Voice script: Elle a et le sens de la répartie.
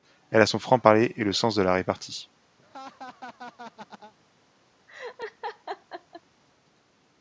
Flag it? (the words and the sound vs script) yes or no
yes